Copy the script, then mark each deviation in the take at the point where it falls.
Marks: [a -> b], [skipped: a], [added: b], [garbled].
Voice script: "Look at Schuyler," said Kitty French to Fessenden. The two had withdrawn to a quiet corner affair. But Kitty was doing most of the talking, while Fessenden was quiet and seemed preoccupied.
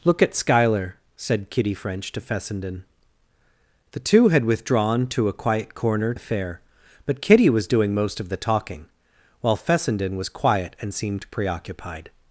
"Look at Schuyler," said Kitty French to Fessenden. The two had withdrawn to a quiet corner affair. But Kitty was doing most of the talking, while Fessenden was quiet and seemed preoccupied.